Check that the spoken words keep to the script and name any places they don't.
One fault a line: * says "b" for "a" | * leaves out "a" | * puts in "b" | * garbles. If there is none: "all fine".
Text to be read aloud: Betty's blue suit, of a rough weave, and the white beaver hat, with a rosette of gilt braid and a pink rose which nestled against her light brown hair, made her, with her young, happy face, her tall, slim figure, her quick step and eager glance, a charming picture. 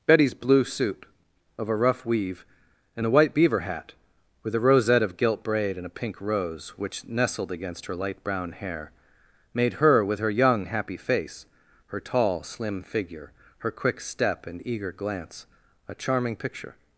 all fine